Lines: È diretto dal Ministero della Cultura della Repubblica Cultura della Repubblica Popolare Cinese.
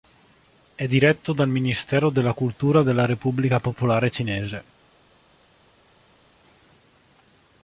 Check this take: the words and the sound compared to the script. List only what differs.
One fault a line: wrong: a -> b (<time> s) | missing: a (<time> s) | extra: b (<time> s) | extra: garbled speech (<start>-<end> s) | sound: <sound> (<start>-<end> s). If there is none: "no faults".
missing: Cultura della Repubblica (3.6 s)